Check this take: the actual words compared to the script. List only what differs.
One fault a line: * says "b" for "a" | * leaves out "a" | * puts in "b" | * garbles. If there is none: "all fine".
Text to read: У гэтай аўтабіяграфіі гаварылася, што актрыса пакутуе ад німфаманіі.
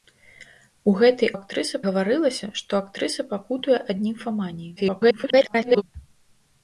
* says "актрыса" for "аўтабіяграфіі"
* garbles